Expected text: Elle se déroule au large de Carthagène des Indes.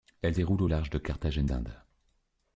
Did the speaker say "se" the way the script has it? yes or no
no